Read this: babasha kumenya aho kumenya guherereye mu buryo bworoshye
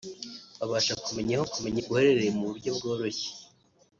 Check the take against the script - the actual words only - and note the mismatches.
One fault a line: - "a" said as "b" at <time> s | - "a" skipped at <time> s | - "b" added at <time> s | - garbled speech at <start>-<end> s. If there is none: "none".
none